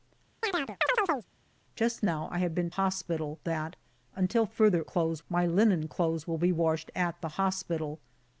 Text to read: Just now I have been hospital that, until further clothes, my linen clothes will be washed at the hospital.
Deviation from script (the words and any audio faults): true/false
true